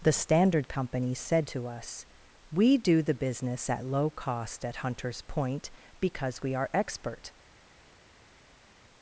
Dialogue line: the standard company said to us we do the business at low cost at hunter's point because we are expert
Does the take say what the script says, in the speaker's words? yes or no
yes